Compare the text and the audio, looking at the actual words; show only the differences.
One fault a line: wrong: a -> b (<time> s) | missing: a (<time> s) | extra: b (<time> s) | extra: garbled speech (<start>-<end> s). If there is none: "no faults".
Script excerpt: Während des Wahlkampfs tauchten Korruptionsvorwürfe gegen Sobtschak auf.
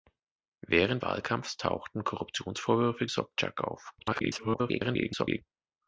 missing: des (1.0 s)
missing: gegen (3.1 s)
extra: garbled speech (4.0-5.4 s)